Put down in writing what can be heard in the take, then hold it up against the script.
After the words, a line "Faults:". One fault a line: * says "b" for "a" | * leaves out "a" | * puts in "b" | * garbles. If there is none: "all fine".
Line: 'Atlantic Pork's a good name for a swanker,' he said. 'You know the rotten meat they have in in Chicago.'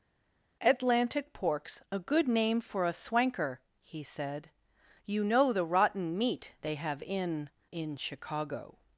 'Atlantic Pork's a good name for a swanker,' he said. 'You know the rotten meat they have in in Chicago.'
Faults:
all fine